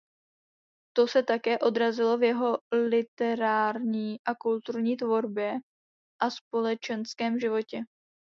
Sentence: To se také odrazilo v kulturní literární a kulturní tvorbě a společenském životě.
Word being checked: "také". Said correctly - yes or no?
yes